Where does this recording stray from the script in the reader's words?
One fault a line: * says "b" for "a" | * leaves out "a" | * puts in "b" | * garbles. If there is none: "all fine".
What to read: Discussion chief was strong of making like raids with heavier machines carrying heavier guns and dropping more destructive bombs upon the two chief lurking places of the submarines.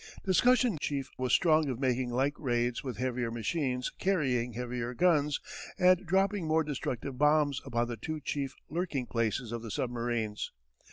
all fine